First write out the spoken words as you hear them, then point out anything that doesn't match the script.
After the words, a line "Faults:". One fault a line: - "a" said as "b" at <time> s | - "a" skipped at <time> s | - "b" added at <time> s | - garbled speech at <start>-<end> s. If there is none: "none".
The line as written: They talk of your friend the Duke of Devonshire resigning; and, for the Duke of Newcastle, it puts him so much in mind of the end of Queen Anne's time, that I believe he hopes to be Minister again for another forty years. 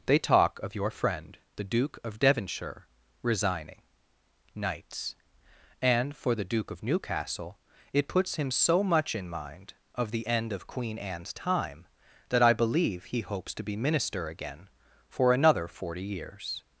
They talk of your friend the Duke of Devonshire resigning; knights and, for the Duke of Newcastle, it puts him so much in mind of the end of Queen Anne's time, that I believe he hopes to be Minister again for another forty years.
Faults:
- "knights" added at 4.5 s